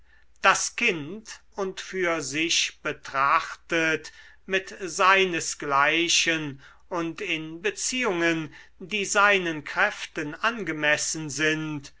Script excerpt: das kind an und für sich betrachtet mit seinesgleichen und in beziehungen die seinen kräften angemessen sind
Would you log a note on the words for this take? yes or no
yes